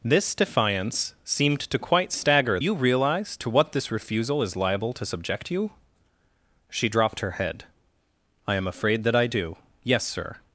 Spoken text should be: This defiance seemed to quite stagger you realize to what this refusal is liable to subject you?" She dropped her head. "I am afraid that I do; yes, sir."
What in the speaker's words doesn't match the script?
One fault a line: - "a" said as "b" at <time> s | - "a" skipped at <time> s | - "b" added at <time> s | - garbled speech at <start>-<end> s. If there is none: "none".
none